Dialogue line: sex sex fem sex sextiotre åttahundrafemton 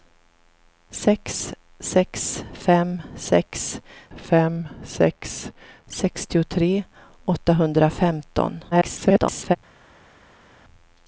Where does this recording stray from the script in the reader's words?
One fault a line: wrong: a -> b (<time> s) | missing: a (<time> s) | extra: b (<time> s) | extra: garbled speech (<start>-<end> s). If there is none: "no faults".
extra: fem sex (4.2 s)
extra: garbled speech (8.7-9.6 s)